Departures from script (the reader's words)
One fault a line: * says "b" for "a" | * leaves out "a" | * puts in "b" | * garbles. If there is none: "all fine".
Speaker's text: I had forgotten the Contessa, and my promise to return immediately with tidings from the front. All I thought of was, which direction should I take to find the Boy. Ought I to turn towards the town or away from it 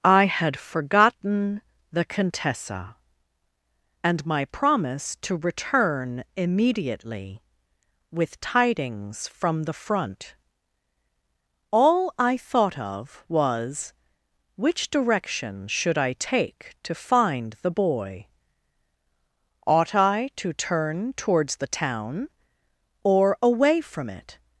all fine